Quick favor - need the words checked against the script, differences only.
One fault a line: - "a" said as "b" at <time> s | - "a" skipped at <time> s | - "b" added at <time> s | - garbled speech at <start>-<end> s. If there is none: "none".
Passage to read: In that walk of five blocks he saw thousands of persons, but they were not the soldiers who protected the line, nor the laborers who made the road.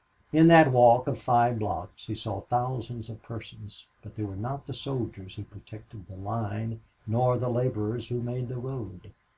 none